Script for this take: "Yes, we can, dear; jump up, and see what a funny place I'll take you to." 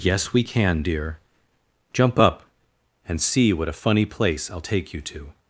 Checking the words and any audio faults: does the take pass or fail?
pass